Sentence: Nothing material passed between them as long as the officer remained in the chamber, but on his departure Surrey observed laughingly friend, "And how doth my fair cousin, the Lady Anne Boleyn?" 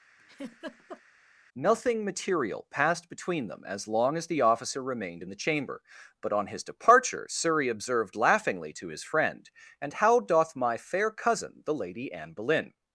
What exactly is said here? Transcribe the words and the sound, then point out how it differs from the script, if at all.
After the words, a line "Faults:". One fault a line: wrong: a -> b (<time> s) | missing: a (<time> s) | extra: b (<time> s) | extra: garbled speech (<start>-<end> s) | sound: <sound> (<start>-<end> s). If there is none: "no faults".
Nothing material passed between them as long as the officer remained in the chamber, but on his departure Surrey observed laughingly to his friend, "And how doth my fair cousin, the Lady Anne Boleyn?"
Faults:
sound: laugh (0.2-1.0 s)
extra: to his (8.7 s)